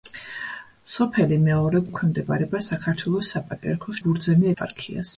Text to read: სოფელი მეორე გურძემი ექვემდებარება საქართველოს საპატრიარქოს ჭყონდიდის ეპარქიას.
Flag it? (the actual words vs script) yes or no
yes